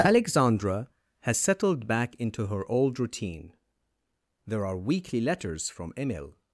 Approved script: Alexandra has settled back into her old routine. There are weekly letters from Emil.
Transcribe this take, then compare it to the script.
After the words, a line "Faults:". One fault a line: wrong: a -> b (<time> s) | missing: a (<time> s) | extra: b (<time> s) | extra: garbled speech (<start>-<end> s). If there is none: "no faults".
Alexandra has settled back into her old routine. There are weekly letters from Emil.
Faults:
no faults